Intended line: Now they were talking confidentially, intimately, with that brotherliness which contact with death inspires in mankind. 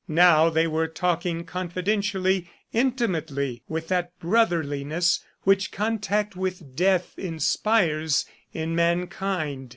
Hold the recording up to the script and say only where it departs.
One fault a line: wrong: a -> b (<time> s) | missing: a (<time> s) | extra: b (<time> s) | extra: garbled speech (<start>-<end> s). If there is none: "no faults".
no faults